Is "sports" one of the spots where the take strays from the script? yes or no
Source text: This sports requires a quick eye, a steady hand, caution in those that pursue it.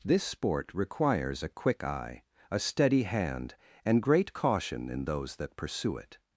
yes